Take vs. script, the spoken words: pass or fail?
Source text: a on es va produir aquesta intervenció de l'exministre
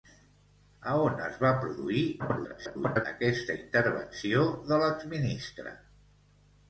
fail